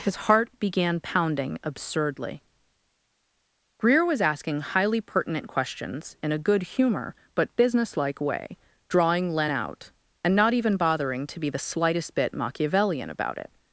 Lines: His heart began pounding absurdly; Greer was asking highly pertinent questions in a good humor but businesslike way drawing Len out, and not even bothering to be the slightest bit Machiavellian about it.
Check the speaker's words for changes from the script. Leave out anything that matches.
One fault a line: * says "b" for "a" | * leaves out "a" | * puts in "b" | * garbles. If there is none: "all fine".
all fine